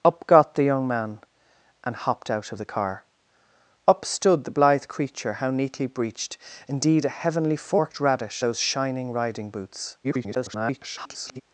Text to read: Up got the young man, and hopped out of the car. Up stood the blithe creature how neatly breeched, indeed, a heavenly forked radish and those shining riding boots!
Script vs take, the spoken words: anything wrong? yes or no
yes